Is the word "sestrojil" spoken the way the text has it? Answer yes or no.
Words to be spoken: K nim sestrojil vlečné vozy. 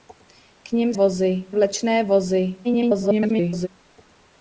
no